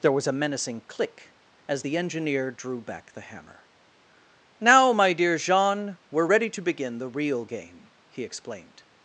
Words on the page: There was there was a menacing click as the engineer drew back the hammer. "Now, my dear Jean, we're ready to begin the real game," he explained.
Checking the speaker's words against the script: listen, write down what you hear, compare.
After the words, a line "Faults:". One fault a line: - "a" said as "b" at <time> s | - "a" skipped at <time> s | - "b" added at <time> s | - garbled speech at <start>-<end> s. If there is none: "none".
There was a menacing click as the engineer drew back the hammer. "Now, my dear Jean, we're ready to begin the real game," he explained.
Faults:
- "there was" skipped at 0.3 s